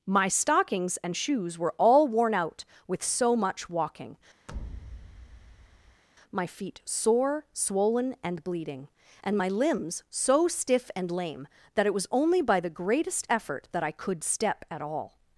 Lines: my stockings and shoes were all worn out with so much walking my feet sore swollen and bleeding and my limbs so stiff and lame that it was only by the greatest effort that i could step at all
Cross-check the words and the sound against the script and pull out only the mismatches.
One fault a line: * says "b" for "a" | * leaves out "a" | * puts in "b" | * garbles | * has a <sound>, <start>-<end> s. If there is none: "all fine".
* has a thud, 4.5-6.0 s